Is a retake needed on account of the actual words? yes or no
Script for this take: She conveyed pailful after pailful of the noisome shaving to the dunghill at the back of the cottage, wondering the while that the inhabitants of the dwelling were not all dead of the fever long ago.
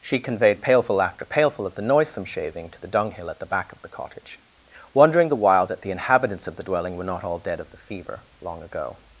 no